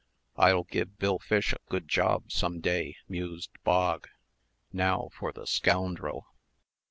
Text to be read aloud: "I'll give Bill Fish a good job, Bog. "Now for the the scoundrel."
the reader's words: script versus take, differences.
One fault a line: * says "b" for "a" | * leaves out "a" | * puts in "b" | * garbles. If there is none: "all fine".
* puts in "some day mused"
* leaves out "the"